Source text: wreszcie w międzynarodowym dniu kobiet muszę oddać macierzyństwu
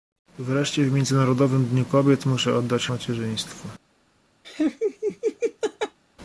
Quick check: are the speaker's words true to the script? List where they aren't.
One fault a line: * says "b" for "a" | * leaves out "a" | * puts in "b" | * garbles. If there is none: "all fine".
all fine